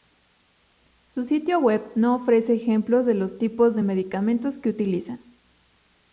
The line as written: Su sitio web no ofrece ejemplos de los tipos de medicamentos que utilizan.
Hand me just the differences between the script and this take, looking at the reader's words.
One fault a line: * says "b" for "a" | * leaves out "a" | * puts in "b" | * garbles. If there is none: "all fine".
all fine